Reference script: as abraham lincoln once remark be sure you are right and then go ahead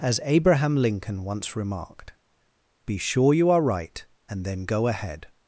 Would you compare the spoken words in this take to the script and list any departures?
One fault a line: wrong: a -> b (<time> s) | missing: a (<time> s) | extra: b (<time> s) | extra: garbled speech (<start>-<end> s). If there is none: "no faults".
wrong: remark -> remarked (1.6 s)